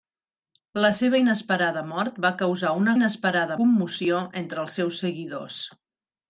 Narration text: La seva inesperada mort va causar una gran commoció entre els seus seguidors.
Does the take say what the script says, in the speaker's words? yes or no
no